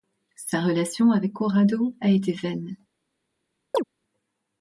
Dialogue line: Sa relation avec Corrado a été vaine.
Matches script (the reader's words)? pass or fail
pass